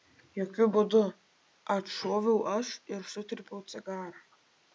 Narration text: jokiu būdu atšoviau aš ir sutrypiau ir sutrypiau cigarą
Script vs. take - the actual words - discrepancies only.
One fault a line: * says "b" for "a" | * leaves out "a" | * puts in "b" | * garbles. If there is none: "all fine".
* leaves out "ir sutrypiau"